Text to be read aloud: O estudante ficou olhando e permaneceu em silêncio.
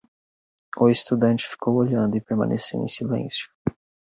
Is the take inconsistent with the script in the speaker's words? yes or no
no